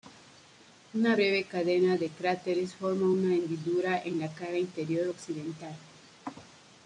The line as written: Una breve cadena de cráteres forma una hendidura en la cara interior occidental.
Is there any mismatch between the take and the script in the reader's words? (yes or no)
no